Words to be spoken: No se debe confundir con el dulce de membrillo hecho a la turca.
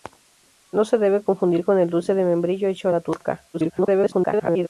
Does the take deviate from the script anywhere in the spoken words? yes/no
yes